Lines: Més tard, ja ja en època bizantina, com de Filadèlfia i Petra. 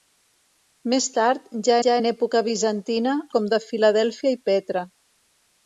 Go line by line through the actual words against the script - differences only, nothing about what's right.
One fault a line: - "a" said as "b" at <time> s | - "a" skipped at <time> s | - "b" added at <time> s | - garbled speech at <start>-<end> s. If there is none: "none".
none